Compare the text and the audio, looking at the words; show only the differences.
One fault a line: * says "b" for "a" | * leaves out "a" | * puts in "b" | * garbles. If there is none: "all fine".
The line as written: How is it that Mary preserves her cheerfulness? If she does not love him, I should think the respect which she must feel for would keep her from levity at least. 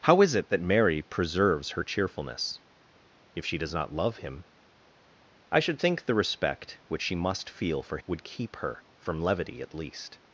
all fine